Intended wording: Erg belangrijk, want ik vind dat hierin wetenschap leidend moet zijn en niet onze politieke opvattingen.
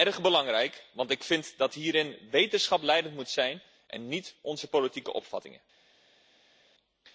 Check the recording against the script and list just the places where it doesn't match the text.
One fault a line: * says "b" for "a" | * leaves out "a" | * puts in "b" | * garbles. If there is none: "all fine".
all fine